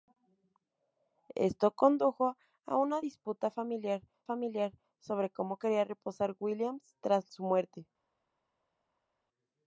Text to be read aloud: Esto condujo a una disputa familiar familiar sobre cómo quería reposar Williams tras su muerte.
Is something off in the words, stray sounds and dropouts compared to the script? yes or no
no